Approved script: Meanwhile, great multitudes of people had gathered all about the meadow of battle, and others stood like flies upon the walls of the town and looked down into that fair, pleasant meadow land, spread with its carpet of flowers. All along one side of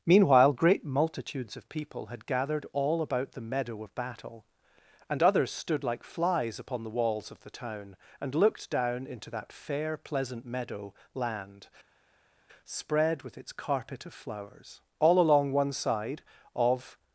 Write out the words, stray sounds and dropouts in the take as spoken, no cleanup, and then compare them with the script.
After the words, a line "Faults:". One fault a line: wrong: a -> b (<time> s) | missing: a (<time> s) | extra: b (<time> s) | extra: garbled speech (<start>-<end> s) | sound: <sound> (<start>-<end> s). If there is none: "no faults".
Meanwhile, great multitudes of people had gathered all about the meadow of battle, and others stood like flies upon the walls of the town and looked down into that fair, pleasant meadow land, spread with its carpet of flowers. All along one side of
Faults:
no faults